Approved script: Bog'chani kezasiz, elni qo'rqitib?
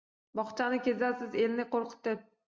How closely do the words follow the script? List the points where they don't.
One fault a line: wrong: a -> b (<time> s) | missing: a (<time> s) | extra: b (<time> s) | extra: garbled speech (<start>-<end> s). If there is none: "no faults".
no faults